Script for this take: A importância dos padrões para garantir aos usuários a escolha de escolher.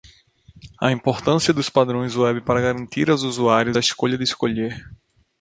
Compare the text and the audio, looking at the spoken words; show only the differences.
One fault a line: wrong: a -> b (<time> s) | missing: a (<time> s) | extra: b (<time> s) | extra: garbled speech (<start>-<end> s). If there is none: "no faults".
extra: web (2.1 s)